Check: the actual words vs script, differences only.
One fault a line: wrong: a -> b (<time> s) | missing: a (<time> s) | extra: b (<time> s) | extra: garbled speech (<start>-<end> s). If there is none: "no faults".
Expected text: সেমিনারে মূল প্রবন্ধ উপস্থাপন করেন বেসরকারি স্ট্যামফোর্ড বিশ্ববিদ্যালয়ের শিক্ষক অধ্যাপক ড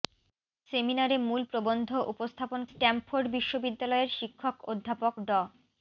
missing: করেন বেসরকারি (2.6 s)